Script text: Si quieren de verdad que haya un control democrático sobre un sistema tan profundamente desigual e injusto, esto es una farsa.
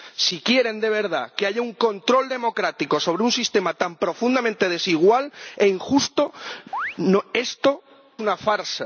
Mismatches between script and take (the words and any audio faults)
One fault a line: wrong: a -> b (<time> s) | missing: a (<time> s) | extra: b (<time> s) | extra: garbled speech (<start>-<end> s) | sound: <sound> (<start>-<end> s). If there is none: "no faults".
sound: chirp (6.7-7.0 s)
missing: es (7.8 s)